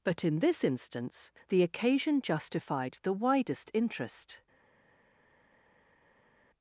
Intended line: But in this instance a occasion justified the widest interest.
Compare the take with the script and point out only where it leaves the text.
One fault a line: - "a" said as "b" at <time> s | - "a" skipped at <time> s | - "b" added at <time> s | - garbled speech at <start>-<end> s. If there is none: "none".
- "a" said as "the" at 1.5 s